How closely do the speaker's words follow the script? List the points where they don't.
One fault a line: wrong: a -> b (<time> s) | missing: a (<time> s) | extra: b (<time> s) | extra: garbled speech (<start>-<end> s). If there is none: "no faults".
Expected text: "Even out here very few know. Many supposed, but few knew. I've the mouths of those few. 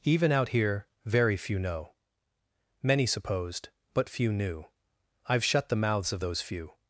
extra: shut (5.4 s)